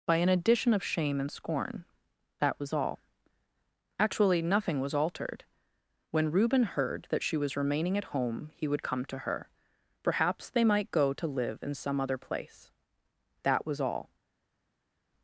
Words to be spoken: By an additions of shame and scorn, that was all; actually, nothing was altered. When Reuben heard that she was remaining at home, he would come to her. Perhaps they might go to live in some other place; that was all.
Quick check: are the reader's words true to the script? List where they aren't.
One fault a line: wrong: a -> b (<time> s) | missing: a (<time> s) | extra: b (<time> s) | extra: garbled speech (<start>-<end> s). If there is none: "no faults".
wrong: additions -> addition (0.3 s)